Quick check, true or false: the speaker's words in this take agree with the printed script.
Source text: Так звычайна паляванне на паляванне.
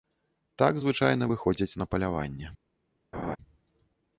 false